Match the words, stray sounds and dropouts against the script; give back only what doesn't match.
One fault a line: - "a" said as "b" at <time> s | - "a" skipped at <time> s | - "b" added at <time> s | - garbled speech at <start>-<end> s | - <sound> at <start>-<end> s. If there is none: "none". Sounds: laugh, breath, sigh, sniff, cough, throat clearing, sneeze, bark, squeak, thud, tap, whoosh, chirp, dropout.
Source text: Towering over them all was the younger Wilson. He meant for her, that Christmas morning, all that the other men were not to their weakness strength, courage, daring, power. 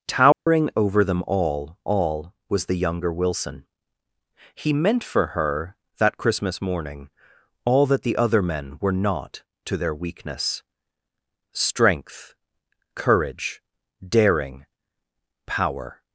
- dropout at 0.3-0.5 s
- "all" added at 1.9 s